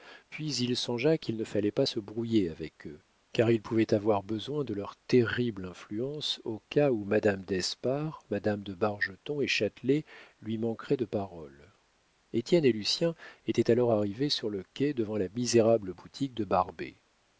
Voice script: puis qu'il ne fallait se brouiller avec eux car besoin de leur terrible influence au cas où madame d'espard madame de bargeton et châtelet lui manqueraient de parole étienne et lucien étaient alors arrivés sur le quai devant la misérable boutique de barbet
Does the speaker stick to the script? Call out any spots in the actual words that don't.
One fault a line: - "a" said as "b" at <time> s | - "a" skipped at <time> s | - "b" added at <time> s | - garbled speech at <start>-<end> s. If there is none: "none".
- "il songea" added at 0.6 s
- "pas" added at 1.7 s
- "il pouvait avoir" added at 3.5 s